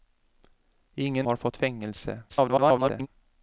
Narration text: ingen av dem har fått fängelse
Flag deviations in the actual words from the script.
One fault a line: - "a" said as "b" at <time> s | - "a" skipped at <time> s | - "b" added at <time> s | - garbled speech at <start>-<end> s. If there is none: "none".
- "av dem" skipped at 1.3 s
- garbled speech at 2.3-3.1 s